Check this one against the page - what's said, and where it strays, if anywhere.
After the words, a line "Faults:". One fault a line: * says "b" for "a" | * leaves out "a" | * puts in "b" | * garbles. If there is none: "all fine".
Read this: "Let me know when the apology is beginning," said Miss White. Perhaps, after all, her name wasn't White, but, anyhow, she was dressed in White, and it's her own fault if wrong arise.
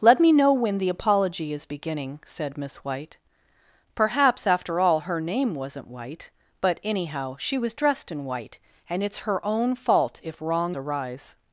"Let me know when the apology is beginning," said Miss White. Perhaps, after all, her name wasn't White, but, anyhow, she was dressed in White, and it's her own fault if wrong arise.
Faults:
all fine